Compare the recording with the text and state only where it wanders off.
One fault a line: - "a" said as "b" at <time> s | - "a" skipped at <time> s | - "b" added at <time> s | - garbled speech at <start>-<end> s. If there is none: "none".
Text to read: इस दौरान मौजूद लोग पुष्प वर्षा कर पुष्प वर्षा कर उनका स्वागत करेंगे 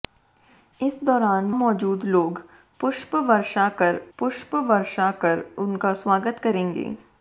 none